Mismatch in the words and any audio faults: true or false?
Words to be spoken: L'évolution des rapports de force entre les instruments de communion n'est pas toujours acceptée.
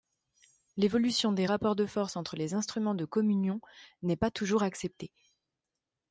false